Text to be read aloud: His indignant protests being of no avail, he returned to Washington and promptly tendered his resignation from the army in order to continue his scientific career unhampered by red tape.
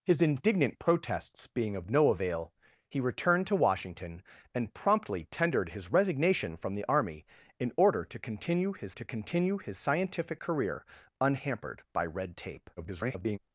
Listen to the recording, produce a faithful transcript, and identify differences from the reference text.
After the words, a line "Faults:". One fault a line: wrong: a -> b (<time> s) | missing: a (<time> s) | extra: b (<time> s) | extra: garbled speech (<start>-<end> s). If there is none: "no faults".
His indignant protests being of no avail, he returned to Washington and promptly tendered his resignation from the army in order to continue his to continue his scientific career unhampered by red tape. [garbled]
Faults:
extra: to continue his (8.9 s)
extra: garbled speech (12.8-13.4 s)